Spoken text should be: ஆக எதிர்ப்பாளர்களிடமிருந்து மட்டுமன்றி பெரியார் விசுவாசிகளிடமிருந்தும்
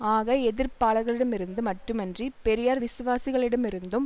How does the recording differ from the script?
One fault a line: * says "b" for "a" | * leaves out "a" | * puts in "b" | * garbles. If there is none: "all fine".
all fine